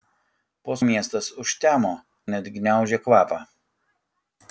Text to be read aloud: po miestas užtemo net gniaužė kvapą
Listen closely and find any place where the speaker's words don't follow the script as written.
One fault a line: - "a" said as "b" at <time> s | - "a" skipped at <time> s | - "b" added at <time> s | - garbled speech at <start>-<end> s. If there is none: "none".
none